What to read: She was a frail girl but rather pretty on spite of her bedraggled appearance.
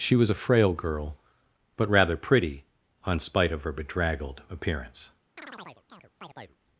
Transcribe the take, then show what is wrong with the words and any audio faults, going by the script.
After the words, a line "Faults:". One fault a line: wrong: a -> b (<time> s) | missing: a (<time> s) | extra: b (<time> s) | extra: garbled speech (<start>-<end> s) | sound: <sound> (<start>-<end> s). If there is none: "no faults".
She was a frail girl but rather pretty on spite of her bedraggled appearance.
Faults:
sound: chirp (5.4-6.6 s)